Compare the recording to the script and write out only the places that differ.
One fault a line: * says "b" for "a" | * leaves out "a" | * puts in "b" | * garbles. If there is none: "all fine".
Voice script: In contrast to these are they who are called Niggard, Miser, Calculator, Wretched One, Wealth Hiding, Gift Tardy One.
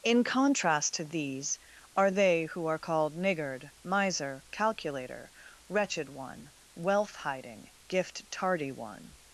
all fine